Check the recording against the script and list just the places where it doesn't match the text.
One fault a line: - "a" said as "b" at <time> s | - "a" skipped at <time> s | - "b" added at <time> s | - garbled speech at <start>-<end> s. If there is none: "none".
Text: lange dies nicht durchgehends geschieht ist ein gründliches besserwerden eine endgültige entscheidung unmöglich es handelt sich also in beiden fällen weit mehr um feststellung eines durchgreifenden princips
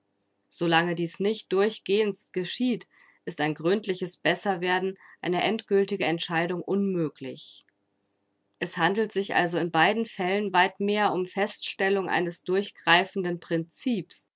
none